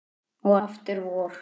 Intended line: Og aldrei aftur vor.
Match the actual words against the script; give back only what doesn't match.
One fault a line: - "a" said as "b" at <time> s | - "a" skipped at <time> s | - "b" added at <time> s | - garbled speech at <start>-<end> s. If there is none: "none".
- "aldrei" skipped at 0.6 s